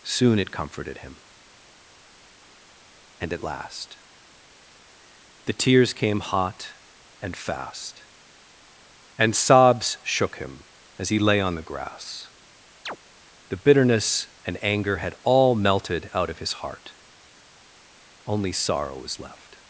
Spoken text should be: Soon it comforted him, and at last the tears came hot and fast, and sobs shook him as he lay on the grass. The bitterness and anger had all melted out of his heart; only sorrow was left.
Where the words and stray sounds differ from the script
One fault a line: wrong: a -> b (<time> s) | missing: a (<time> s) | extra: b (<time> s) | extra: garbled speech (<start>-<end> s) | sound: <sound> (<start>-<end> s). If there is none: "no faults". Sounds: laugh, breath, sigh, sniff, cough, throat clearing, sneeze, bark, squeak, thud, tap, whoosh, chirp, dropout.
sound: chirp (12.9-13.0 s)